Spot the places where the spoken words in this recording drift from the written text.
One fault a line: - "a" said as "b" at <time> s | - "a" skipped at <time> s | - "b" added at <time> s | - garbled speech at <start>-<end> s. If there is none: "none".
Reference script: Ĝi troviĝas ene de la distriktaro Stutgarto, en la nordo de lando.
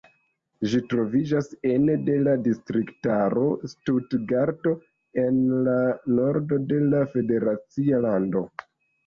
- "la federacia" added at 6.9 s